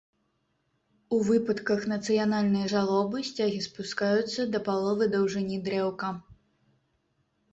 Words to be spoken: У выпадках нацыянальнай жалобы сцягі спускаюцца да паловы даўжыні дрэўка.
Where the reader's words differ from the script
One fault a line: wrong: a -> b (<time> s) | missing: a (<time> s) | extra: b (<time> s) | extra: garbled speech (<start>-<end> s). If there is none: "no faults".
no faults